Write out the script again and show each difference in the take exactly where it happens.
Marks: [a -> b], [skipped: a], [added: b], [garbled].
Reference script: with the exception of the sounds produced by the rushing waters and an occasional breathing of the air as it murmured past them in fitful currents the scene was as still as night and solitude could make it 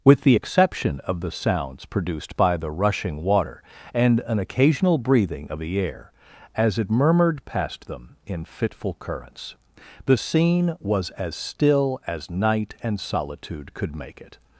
with the exception of the sounds produced by the rushing [waters -> water] and an occasional breathing of the air as it murmured past them in fitful currents the scene was as still as night and solitude could make it